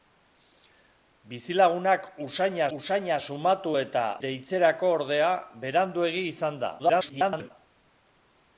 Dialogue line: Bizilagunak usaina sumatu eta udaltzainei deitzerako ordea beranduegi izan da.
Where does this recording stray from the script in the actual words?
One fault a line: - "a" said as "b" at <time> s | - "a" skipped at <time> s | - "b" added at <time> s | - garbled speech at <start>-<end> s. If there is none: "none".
- "usaina" added at 2.8 s
- "udaltzainei" skipped at 4.0 s
- garbled speech at 6.8-7.5 s